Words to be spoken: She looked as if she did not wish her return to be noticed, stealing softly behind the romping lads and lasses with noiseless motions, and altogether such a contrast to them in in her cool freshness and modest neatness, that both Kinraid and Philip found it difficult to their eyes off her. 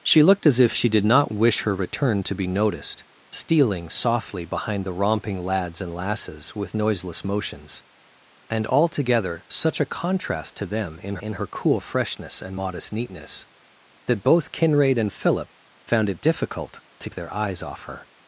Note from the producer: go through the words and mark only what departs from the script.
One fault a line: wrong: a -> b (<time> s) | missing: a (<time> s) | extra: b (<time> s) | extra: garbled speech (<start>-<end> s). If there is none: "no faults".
no faults